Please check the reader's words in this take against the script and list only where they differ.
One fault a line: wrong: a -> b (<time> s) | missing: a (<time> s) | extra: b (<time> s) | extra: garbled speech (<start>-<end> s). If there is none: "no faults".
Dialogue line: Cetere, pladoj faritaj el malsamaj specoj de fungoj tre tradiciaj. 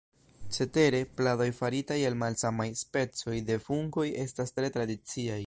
extra: estas (4.3 s)